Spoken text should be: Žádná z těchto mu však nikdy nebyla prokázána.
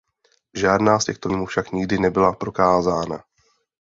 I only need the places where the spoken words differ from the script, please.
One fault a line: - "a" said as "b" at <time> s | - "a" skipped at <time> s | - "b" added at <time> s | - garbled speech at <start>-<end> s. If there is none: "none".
none